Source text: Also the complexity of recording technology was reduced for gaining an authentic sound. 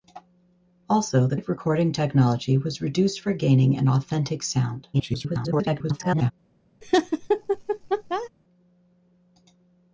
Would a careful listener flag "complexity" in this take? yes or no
yes